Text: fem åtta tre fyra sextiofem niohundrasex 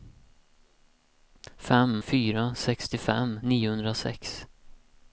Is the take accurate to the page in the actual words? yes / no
no